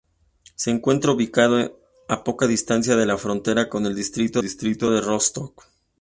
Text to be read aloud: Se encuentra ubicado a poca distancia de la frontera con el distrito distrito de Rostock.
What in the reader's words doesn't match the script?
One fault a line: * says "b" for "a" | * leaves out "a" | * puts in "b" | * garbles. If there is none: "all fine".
all fine